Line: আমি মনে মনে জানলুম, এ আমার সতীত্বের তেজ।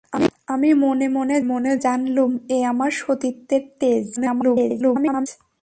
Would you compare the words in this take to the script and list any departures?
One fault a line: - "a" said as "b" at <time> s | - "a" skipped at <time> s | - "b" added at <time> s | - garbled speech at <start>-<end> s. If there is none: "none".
- "মনে" added at 1.4 s
- garbled speech at 4.2-5.3 s